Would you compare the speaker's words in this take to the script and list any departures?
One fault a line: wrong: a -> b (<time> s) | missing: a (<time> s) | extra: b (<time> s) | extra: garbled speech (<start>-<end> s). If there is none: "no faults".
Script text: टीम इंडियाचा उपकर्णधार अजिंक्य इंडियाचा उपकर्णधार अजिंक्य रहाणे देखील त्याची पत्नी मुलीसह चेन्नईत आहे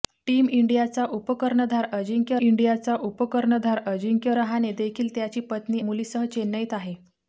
no faults